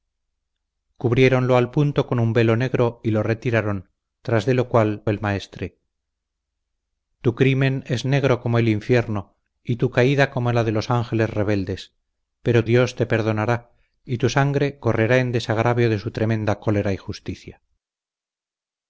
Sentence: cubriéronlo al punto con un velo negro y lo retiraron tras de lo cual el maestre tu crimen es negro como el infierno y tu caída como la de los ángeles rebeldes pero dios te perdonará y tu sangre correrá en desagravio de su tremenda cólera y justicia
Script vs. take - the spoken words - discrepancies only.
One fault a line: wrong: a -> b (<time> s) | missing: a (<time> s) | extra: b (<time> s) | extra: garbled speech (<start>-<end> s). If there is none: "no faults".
no faults